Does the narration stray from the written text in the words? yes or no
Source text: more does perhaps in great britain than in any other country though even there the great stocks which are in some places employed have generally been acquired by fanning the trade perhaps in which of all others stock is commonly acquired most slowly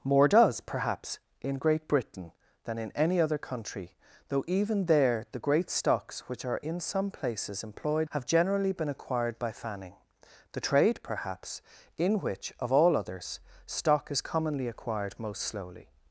no